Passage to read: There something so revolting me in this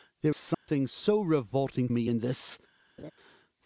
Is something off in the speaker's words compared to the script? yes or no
no